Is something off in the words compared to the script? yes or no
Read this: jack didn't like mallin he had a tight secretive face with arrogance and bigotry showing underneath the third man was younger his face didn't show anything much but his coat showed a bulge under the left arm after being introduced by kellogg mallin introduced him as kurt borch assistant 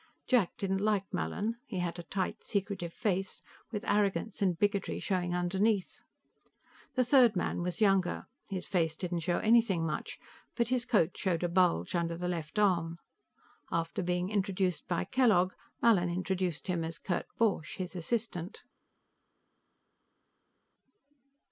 yes